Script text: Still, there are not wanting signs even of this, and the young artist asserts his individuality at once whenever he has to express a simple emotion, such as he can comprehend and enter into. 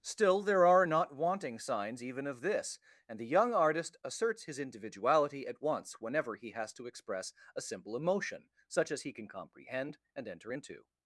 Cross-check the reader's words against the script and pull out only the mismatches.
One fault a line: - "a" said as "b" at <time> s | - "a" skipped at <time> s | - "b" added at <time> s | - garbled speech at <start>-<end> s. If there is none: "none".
none